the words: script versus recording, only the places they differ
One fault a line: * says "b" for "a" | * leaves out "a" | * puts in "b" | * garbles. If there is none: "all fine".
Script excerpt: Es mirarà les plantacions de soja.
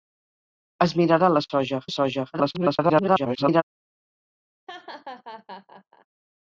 * says "soja" for "plantacions"
* garbles